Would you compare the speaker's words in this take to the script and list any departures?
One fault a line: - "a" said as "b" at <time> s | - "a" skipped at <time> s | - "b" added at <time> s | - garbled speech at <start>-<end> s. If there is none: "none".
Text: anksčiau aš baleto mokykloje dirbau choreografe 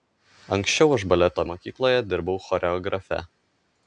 none